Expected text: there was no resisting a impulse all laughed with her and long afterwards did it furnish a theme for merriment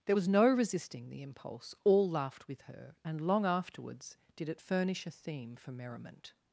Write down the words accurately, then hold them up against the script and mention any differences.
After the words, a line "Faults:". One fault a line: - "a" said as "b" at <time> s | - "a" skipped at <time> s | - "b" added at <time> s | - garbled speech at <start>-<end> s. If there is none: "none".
there was no resisting the impulse all laughed with her and long afterwards did it furnish a theme for merriment
Faults:
- "a" said as "the" at 1.1 s